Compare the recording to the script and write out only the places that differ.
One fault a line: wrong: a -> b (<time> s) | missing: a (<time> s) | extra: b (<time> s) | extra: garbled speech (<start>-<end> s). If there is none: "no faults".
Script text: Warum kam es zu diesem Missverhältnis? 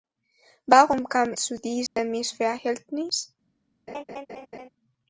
missing: es (1.3 s)